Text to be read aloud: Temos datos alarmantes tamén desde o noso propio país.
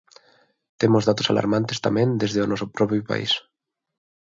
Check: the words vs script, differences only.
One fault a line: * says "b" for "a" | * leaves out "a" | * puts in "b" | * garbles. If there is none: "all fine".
all fine